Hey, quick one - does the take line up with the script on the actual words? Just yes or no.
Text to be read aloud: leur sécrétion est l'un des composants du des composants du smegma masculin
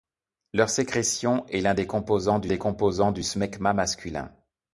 yes